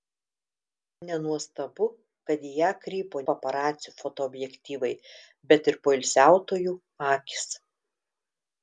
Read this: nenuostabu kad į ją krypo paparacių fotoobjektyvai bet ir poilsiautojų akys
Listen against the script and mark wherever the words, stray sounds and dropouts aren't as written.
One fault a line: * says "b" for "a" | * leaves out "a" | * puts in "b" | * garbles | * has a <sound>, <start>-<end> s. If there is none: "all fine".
all fine